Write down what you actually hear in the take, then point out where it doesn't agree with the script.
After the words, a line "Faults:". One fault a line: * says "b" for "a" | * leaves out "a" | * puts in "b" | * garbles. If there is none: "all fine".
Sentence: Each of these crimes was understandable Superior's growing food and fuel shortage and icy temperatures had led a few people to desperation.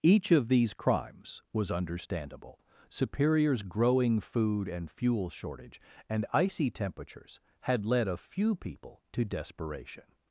Each of these crimes was understandable Superior's growing food and fuel shortage and icy temperatures had led a few people to desperation.
Faults:
all fine